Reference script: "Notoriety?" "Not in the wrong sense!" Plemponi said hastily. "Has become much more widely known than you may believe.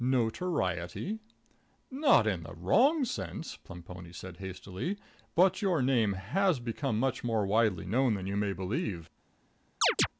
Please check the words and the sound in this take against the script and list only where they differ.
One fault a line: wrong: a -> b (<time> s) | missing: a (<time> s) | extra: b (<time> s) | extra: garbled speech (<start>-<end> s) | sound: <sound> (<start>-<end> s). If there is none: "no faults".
extra: But your name (5.3 s)
sound: chirp (9.8-10.1 s)